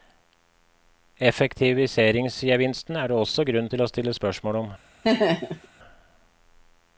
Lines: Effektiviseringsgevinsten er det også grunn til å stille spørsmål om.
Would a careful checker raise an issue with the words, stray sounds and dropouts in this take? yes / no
yes